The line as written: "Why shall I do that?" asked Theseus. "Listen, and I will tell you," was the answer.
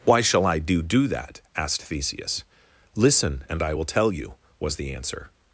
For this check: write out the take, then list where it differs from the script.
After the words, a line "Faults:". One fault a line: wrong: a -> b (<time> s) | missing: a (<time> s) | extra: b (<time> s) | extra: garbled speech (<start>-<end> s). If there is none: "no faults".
"Why shall I do do that?" asked Theseus. "Listen, and I will tell you," was the answer.
Faults:
extra: do (0.8 s)